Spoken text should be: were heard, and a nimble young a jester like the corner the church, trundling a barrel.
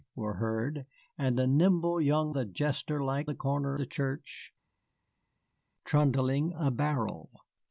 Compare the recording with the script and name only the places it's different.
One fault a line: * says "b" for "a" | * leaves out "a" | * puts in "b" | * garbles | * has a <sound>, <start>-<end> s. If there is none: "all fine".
all fine